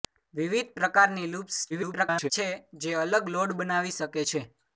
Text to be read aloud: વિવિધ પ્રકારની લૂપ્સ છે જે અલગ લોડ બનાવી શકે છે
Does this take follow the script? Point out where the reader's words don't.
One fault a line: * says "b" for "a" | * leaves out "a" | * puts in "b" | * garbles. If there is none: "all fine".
* garbles